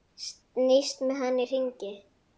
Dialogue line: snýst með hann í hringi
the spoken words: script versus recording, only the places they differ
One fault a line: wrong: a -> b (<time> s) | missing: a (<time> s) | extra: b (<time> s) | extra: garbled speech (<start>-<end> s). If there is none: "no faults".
no faults